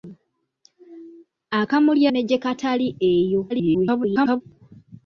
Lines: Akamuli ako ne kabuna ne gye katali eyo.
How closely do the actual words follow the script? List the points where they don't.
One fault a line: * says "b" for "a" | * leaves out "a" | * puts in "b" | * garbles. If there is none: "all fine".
* leaves out "ako ne kabuna"
* garbles